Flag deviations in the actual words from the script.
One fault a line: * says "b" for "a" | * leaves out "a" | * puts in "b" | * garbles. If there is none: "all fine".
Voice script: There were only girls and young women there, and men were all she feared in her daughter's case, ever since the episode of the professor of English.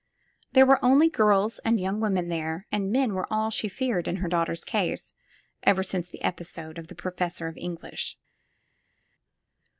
all fine